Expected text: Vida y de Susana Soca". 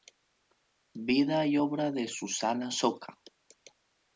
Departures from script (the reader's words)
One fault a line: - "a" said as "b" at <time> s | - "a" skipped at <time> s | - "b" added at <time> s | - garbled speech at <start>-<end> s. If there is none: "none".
- "obra" added at 1.6 s